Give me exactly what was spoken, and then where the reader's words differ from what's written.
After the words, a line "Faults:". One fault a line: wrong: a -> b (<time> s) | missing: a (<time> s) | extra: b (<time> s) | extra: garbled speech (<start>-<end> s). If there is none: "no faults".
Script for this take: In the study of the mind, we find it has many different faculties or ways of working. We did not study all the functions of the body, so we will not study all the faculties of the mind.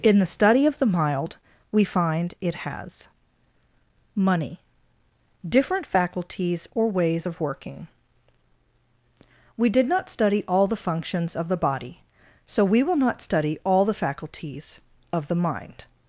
In the study of the mild, we find it has money different faculties or ways of working. We did not study all the functions of the body, so we will not study all the faculties of the mind.
Faults:
wrong: mind -> mild (0.9 s)
wrong: many -> money (4.2 s)